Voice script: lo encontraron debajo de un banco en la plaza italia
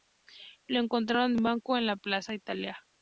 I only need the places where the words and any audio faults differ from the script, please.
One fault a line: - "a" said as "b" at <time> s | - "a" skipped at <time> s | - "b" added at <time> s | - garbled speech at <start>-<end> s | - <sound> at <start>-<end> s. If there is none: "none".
- "debajo de" skipped at 1.4 s